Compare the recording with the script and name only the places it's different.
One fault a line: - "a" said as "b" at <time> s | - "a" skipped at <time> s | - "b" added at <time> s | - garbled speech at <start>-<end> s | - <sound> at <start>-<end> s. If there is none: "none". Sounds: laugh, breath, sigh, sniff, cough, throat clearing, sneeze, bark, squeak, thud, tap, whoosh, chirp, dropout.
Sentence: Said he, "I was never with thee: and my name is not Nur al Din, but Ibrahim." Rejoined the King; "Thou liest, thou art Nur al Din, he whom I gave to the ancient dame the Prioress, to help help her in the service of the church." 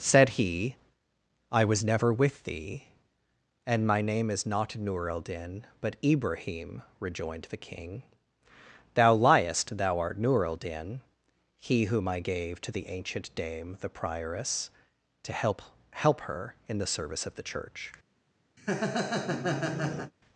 - laugh at 18.6-20.1 s